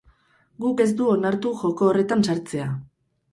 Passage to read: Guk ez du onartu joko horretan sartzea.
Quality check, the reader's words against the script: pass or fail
pass